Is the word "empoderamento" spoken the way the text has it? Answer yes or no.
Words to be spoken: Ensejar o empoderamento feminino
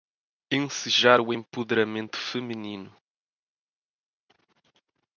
yes